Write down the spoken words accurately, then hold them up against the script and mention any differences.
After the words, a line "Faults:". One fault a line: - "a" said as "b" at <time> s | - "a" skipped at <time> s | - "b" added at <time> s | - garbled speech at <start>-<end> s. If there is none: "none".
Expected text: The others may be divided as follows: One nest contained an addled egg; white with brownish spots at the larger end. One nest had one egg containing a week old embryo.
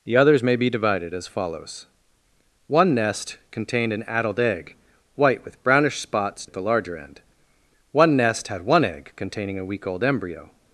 The others may be divided as follows: One nest contained an addled egg; white with brownish spots at the larger end. One nest had one egg containing a week old embryo.
Faults:
none